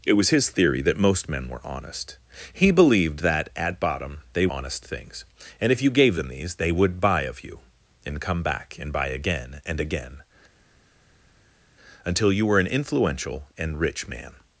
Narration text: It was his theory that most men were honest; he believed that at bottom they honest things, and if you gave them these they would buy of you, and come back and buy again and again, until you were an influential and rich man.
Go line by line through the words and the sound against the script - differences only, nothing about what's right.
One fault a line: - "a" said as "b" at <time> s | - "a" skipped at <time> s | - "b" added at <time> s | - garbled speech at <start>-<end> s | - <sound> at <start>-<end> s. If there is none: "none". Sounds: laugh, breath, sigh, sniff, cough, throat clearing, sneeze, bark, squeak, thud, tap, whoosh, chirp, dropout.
none